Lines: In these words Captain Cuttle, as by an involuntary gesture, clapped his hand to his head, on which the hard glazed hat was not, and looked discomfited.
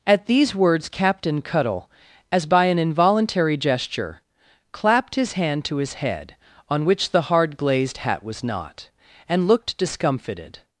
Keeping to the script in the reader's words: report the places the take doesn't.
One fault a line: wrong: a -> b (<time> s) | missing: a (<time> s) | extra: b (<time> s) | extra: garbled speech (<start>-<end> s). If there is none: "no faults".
wrong: In -> At (0.1 s)